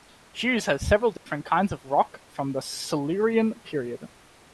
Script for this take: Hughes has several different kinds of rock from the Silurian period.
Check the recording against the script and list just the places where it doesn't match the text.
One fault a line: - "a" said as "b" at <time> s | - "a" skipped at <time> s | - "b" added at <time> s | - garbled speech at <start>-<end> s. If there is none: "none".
none